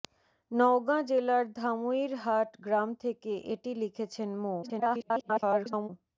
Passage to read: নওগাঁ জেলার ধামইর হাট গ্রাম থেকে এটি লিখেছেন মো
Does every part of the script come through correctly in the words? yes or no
no